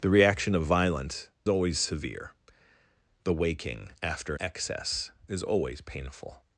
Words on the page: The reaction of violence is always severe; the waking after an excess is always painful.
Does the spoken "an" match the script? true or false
false